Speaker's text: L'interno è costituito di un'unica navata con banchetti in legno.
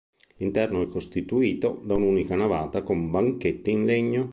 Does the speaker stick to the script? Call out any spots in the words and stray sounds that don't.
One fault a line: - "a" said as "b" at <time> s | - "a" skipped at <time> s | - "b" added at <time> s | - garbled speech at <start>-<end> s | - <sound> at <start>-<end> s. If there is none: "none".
- "di" said as "da" at 1.8 s